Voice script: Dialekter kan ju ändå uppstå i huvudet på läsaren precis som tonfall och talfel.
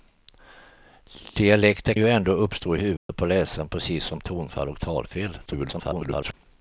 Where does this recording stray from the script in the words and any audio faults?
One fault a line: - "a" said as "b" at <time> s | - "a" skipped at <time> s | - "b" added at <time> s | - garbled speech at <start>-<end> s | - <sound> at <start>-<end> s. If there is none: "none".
- "kan" skipped at 1.9 s
- dropout at 3.0-3.1 s
- garbled speech at 5.5-6.3 s